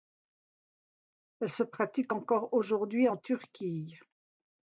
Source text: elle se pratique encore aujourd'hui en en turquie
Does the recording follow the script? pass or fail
fail